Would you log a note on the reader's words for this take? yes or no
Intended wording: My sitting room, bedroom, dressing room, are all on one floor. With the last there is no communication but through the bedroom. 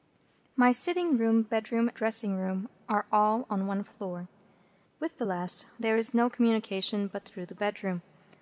no